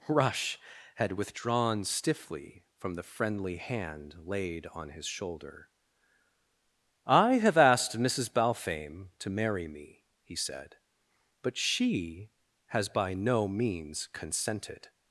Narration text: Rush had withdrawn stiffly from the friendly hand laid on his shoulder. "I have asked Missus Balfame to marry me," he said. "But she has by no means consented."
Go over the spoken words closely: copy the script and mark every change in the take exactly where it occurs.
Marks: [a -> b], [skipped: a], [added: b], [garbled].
Rush had withdrawn stiffly from the friendly hand laid on his shoulder. "I have asked Missus Balfame to marry me," he said. "But she has by no means consented."